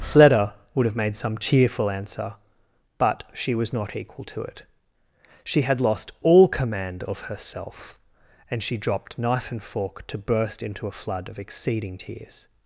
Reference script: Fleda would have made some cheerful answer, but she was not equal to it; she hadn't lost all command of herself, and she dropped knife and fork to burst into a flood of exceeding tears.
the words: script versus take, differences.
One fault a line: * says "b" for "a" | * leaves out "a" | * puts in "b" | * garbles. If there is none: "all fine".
* says "had" for "hadn't"